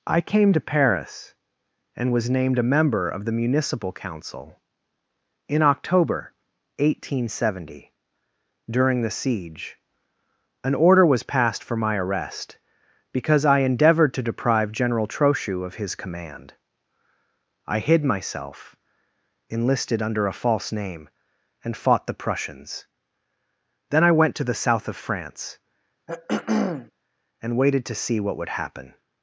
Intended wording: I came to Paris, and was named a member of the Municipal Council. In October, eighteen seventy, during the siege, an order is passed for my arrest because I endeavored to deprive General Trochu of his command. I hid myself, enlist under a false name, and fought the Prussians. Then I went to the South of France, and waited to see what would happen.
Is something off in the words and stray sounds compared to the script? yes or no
yes